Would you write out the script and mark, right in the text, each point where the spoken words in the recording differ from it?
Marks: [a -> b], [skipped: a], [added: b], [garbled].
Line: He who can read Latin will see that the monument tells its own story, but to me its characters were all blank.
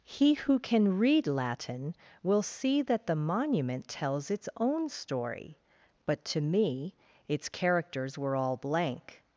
He who can read Latin will see that the monument tells its own story, but to me its characters were all blank.